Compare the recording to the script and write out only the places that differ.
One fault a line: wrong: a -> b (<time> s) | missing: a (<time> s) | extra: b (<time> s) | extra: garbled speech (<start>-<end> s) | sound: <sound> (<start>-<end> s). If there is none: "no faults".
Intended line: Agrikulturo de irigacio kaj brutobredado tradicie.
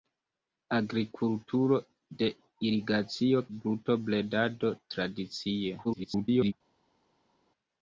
missing: kaj (3.4 s)
extra: garbled speech (5.8-6.5 s)